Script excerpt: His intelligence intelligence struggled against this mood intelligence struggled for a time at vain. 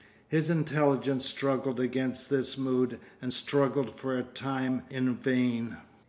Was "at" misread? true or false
true